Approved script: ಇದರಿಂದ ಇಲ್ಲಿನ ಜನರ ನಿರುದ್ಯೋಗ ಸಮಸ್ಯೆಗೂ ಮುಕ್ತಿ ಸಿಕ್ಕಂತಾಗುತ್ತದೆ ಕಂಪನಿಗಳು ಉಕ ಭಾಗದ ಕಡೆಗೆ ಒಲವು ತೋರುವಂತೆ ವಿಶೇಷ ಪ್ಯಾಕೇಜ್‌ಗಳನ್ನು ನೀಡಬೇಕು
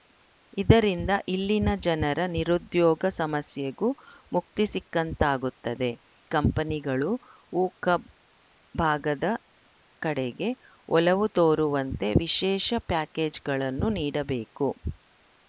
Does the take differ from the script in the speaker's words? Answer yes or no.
no